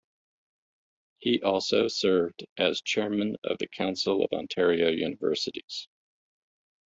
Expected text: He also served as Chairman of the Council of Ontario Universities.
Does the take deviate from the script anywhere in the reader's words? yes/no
no